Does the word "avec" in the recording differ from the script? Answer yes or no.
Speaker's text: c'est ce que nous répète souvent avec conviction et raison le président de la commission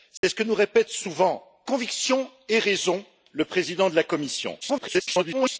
yes